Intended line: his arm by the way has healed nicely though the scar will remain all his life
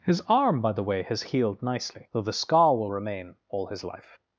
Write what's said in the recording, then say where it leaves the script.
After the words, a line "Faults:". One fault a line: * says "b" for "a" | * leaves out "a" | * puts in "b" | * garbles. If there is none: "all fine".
his arm by the way has healed nicely though the scar will remain all his life
Faults:
all fine